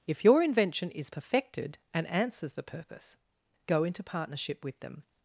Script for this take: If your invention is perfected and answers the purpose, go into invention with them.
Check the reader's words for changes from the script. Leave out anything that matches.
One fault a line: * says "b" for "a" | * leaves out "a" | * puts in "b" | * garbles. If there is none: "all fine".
* says "partnership" for "invention"